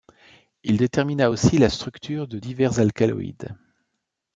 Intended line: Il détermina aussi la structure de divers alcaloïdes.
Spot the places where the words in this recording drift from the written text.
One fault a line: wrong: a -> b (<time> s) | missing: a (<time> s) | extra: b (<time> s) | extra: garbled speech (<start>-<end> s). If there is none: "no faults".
no faults